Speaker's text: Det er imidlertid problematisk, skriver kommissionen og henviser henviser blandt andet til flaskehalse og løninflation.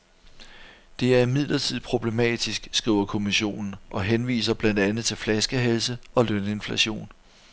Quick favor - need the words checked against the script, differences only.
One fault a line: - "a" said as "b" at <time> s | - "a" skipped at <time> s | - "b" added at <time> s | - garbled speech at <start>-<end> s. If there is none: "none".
- "henviser" skipped at 4.5 s